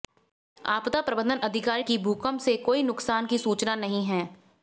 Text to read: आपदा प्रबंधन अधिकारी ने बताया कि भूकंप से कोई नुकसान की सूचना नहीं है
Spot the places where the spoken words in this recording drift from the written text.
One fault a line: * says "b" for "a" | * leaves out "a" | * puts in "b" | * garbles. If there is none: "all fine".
* leaves out "ने बताया"